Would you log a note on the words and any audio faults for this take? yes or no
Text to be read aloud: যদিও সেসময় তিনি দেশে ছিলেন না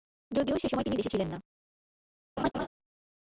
yes